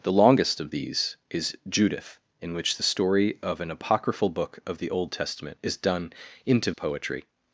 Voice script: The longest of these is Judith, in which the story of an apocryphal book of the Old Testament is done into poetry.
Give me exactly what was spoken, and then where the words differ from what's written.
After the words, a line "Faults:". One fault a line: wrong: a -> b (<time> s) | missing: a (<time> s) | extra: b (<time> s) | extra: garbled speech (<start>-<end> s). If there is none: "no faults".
The longest of these is Judith, in which the story of an apocryphal book of the Old Testament is done into poetry.
Faults:
no faults